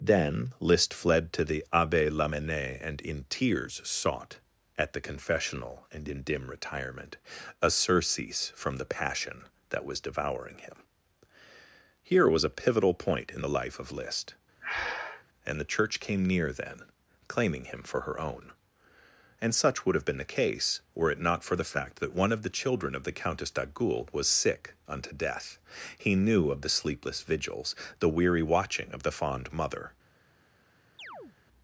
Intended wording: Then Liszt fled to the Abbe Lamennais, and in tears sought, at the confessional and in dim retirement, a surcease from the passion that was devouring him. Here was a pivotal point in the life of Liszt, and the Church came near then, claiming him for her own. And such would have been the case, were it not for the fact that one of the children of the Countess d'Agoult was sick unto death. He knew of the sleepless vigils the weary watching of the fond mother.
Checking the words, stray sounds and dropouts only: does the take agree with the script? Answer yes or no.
no